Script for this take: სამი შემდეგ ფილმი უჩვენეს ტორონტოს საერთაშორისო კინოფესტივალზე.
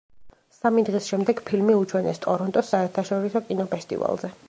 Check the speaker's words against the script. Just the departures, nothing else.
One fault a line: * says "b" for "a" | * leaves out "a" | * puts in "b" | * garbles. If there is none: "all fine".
* puts in "დღის"